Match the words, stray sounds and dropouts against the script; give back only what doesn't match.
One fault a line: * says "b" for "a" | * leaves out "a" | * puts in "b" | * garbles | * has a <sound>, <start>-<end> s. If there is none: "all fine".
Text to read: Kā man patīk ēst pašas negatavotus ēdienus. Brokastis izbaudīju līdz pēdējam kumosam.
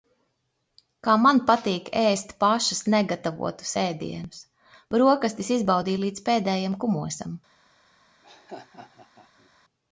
* has a laugh, 8.2-9.5 s